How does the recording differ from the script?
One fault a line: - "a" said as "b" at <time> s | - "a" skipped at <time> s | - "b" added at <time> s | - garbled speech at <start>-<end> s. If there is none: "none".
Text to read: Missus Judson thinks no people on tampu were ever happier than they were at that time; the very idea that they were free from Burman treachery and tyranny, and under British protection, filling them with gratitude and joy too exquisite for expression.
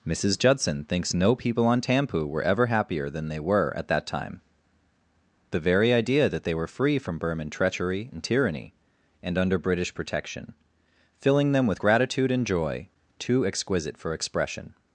none